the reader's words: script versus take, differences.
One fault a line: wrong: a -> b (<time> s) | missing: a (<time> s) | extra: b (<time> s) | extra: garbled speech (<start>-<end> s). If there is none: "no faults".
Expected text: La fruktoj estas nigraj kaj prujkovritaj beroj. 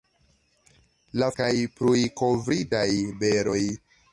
missing: fruktoj estas nigraj (1.3 s)